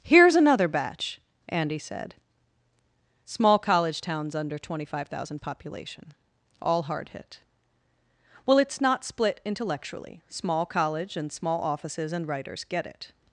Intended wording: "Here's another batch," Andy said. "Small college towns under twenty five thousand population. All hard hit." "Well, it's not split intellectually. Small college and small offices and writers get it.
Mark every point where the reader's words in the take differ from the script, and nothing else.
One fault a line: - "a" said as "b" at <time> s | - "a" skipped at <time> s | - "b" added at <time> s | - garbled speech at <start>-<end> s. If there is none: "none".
none